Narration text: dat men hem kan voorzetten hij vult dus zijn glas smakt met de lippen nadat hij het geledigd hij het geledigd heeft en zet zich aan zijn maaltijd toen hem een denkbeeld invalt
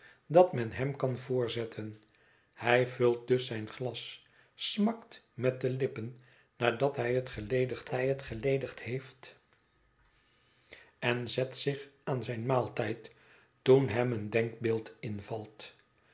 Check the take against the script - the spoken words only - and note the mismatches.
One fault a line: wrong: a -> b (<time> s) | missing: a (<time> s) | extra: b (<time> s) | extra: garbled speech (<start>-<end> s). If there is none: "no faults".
no faults